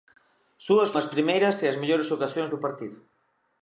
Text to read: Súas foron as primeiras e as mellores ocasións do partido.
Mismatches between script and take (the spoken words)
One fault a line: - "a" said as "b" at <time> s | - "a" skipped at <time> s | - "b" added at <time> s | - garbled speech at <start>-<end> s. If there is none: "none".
- "foron" skipped at 0.9 s